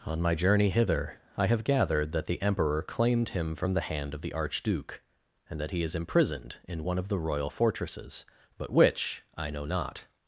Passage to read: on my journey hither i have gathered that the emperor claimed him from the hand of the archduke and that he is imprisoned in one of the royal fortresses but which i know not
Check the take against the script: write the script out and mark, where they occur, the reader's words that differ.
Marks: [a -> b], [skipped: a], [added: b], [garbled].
on my journey hither i have gathered that the emperor claimed him from the hand of the archduke and that he is imprisoned in one of the royal fortresses but which i know not